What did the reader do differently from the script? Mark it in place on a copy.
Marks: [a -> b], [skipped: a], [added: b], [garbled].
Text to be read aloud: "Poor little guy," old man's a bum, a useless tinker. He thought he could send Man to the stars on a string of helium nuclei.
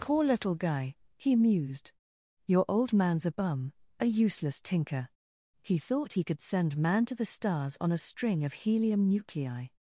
"Poor little guy," [added: he mused Your] old man's a bum, a useless tinker. He thought he could send Man to the stars on a string of helium nuclei.